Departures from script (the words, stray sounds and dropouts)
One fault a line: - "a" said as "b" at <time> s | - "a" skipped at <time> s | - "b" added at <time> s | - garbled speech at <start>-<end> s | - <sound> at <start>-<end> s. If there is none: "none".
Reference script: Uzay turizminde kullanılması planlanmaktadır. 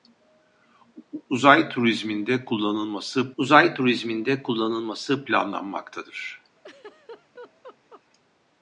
- "uzay turizminde kullanılması" added at 3.4 s
- laugh at 6.6-8.0 s